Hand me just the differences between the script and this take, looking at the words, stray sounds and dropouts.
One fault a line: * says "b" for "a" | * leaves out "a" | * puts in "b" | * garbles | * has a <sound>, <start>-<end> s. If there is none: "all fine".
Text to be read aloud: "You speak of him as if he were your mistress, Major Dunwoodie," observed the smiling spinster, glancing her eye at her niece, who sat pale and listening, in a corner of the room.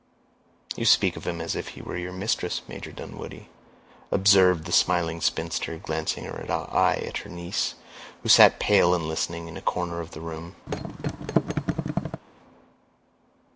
* has a thud, 10.7-12.2 s